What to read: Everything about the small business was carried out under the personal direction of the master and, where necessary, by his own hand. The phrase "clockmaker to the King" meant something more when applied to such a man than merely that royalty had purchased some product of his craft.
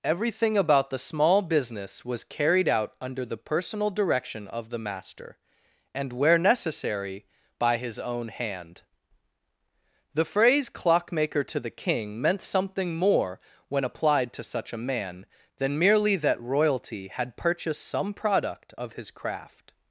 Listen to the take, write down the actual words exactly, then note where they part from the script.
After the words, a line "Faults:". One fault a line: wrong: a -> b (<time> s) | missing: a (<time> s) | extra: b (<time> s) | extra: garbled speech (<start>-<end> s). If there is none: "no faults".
Everything about the small business was carried out under the personal direction of the master and, where necessary, by his own hand. The phrase "clockmaker to the King" meant something more when applied to such a man than merely that royalty had purchased some product of his craft.
Faults:
no faults